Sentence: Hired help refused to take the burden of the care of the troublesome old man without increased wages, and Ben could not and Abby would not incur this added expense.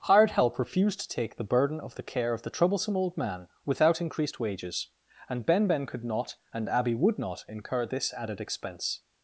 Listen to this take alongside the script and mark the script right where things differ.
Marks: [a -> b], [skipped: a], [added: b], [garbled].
Hired help refused to take the burden of the care of the troublesome old man without increased wages, and Ben [added: Ben] could not and Abby would not incur this added expense.